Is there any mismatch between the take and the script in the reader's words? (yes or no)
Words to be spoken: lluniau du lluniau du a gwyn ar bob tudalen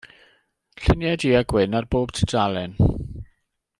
yes